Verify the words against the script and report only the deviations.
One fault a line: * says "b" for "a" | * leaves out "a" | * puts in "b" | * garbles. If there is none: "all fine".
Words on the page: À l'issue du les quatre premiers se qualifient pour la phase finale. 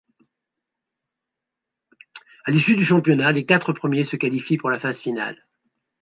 * puts in "championnat"